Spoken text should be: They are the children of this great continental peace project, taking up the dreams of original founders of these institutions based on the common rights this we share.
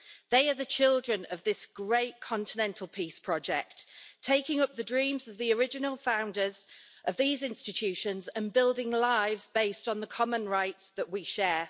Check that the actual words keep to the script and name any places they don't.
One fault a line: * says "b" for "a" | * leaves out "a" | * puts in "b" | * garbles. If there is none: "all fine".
* puts in "the"
* puts in "and building lives"
* says "that" for "this"